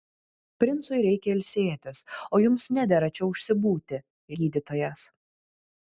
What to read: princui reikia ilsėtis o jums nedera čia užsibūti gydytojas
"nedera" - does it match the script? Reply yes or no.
yes